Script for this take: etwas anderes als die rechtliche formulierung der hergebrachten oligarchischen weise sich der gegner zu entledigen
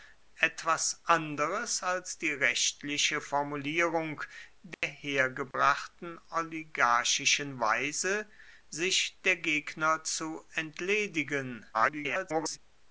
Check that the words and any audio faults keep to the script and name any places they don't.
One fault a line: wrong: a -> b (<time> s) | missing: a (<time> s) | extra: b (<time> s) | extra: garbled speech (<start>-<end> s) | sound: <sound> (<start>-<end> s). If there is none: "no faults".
sound: dropout (4.7-4.8 s)
sound: dropout (5.5-5.5 s)
extra: garbled speech (11.7-12.6 s)